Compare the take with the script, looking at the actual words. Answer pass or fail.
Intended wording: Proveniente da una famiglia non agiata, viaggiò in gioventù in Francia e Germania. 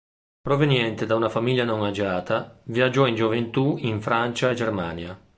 pass